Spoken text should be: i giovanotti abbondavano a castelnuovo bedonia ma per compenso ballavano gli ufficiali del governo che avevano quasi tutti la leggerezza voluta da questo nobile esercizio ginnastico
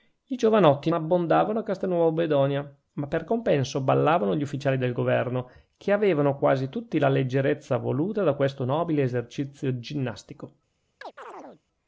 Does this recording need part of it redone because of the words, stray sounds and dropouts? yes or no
yes